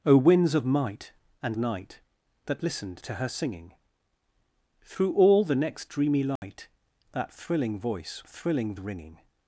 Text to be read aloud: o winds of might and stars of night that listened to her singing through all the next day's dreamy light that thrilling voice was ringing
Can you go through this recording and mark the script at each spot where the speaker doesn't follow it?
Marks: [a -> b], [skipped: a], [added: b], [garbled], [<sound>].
o winds of might and [skipped: stars of] night that listened to her singing through all the next [skipped: day's] dreamy light [dropout] that thrilling voice [was -> thrilling] ringing